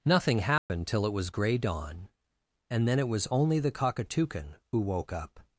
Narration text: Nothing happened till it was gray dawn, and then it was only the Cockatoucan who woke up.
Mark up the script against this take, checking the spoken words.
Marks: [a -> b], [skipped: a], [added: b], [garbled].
Nothing happened till it was gray dawn, and then it was only the Cockatoucan who woke up.